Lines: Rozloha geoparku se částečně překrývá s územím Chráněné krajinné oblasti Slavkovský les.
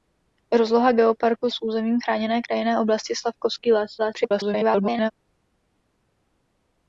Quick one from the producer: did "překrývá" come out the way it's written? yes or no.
no